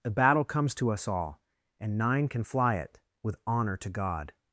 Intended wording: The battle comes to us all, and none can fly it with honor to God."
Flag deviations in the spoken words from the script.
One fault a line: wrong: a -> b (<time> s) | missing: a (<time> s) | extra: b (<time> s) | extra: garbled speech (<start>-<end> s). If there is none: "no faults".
wrong: none -> nine (2.0 s)